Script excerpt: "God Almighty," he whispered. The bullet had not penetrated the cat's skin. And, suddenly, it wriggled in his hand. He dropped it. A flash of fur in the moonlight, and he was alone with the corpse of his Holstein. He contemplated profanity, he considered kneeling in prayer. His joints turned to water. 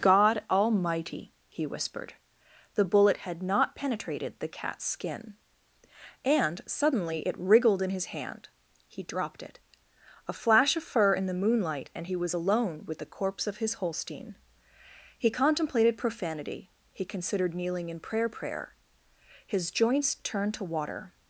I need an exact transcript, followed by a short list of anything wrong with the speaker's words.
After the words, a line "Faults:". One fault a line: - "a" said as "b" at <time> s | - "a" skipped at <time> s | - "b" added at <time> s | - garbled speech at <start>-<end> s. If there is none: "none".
"God Almighty," he whispered. The bullet had not penetrated the cat's skin. And, suddenly, it wriggled in his hand. He dropped it. A flash of fur in the moonlight, and he was alone with the corpse of his Holstein. He contemplated profanity, he considered kneeling in prayer prayer. His joints turned to water.
Faults:
- "prayer" added at 18.3 s